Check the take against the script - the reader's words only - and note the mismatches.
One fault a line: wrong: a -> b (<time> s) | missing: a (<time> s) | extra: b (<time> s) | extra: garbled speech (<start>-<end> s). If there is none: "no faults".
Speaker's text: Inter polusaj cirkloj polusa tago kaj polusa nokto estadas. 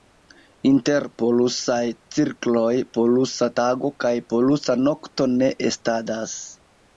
extra: ne (5.3 s)